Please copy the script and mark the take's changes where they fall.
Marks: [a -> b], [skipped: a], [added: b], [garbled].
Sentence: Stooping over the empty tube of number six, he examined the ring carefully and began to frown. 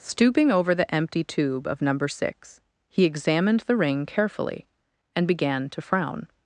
Stooping over the empty tube of number six, he examined the ring carefully and began to frown.